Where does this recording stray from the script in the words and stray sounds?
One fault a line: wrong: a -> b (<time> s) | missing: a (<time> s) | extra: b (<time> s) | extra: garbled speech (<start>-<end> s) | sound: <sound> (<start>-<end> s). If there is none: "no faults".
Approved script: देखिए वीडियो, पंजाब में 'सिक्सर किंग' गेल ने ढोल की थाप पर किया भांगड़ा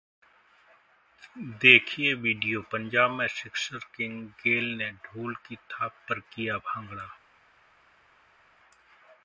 no faults